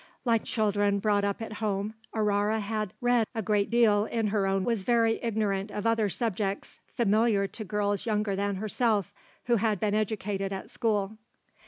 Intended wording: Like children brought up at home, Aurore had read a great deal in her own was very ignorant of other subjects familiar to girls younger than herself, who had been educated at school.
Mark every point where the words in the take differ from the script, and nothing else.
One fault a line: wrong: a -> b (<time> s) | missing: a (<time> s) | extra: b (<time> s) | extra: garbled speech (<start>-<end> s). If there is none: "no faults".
no faults